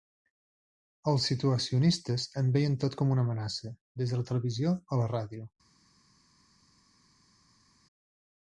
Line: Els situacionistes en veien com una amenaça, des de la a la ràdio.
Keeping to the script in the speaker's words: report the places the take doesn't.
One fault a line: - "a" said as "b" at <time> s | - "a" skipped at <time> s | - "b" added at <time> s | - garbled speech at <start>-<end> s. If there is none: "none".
- "tot" added at 2.9 s
- "televisió" added at 4.3 s